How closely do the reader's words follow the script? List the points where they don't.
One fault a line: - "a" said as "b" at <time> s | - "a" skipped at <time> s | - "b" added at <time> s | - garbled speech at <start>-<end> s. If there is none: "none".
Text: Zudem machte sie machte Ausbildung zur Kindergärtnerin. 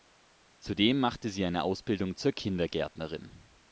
- "machte" said as "eine" at 1.4 s